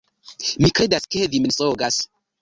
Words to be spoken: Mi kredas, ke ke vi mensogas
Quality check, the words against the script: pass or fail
fail